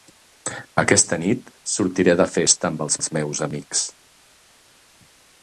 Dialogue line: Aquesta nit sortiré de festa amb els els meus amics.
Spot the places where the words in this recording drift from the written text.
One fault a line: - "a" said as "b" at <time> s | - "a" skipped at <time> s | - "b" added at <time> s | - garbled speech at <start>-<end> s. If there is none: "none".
none